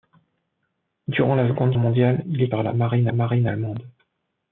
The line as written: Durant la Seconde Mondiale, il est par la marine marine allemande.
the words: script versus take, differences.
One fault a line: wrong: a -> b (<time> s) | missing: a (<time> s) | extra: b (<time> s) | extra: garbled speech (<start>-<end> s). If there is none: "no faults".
no faults